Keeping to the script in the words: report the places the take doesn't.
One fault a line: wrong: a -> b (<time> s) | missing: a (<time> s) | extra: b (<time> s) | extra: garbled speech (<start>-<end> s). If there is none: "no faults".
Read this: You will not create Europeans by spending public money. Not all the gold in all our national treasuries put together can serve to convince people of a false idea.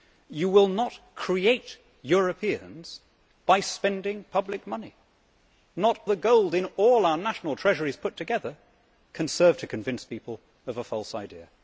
missing: all (6.0 s)